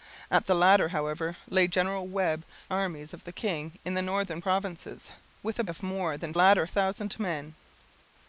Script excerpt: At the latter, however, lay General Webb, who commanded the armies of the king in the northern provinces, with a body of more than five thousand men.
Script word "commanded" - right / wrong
wrong